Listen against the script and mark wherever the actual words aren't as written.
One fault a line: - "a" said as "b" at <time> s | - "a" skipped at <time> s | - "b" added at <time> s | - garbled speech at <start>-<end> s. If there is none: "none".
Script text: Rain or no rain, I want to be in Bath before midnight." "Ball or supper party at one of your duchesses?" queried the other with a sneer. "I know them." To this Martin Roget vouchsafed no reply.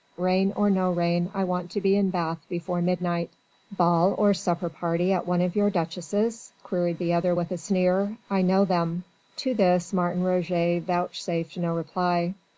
none